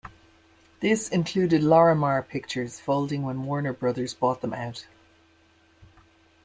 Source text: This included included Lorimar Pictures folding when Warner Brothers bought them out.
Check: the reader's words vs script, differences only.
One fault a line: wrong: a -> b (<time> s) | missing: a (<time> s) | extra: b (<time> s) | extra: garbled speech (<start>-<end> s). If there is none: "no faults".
missing: included (1.6 s)